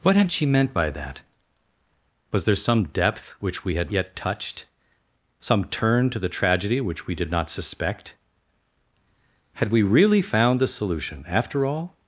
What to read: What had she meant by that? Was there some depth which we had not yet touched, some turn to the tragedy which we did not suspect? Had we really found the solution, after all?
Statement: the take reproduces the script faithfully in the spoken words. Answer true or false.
false